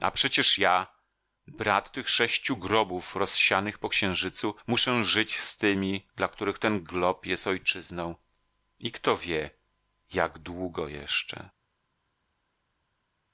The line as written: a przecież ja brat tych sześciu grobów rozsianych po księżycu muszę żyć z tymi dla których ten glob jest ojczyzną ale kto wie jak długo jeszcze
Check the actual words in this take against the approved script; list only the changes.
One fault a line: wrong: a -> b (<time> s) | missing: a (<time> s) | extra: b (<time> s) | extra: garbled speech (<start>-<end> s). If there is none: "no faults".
wrong: ale -> i (8.8 s)